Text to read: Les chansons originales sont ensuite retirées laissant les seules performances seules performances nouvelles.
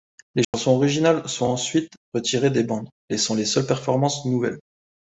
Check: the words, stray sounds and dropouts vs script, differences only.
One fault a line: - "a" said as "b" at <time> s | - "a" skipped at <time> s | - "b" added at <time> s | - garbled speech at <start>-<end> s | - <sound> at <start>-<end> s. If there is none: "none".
- dropout at 0.4-0.5 s
- "des bandes" added at 2.5 s
- "seules performances" skipped at 4.2 s